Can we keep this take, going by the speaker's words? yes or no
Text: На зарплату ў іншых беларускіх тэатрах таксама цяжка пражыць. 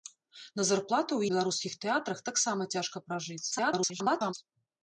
no